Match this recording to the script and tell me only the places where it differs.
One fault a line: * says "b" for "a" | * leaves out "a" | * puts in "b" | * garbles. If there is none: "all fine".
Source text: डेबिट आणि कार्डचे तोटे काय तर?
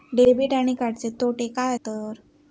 all fine